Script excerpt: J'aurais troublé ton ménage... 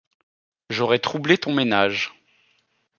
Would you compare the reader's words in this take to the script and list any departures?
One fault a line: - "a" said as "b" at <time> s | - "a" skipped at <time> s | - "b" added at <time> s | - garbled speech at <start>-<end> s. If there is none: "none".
none